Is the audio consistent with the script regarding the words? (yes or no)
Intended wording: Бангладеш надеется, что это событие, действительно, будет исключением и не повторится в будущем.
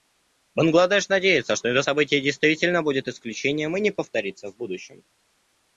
yes